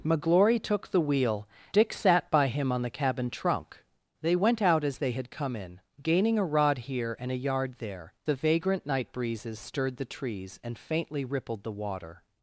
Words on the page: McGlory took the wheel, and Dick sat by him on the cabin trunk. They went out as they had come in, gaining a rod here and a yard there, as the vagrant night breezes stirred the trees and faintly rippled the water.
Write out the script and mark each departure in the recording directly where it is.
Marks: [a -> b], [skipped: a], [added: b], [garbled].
McGlory took the wheel, [skipped: and] Dick sat by him on the cabin trunk. They went out as they had come in, gaining a rod here and a yard there, [skipped: as] the vagrant night breezes stirred the trees and faintly rippled the water.